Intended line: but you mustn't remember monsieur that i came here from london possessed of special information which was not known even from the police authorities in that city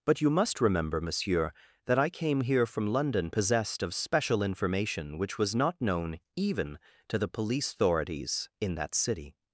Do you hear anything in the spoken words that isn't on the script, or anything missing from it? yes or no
yes